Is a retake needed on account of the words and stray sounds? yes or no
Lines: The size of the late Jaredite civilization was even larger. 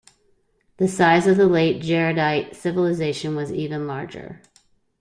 no